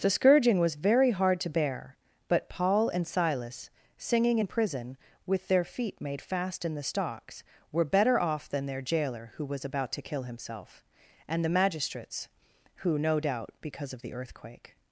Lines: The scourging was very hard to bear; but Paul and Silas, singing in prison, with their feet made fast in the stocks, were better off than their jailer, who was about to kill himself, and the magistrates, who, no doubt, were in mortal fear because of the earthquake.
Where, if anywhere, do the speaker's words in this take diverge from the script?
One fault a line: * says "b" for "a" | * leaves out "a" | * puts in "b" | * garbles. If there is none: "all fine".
* leaves out "were in mortal fear"